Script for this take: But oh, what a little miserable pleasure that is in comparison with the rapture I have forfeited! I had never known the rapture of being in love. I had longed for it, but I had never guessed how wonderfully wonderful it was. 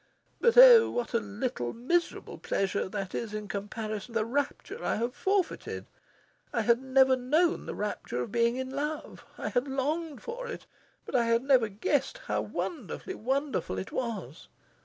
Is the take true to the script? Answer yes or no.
no